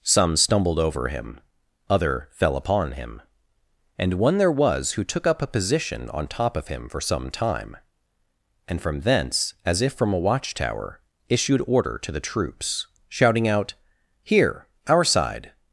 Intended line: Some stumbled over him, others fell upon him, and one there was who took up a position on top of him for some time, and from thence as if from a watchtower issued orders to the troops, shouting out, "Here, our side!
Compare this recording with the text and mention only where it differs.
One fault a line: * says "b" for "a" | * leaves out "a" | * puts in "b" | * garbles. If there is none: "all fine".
* says "other" for "others"
* says "order" for "orders"